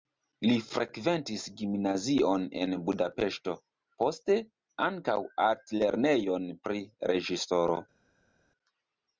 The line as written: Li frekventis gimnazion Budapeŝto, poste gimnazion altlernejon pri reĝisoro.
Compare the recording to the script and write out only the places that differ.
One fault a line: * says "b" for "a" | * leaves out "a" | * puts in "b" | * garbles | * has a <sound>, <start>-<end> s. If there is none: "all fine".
* puts in "en"
* says "ankaŭ" for "gimnazion"